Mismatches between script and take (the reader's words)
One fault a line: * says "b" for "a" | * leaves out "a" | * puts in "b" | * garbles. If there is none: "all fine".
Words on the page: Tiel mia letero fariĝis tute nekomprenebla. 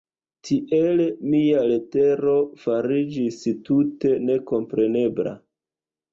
all fine